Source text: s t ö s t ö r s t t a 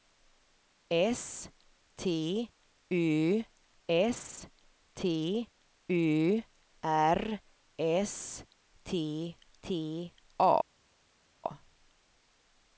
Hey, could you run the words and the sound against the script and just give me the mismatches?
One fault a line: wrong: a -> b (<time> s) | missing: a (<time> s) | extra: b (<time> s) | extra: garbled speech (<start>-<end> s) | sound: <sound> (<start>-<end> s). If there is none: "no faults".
no faults